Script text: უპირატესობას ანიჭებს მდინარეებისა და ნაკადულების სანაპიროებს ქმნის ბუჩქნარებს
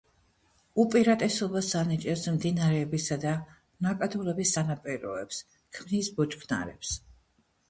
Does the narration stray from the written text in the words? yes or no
no